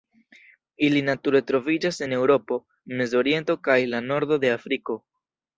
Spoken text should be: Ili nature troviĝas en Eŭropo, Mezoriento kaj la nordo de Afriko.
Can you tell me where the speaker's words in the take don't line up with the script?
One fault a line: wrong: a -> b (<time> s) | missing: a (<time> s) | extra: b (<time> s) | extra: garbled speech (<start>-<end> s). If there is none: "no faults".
no faults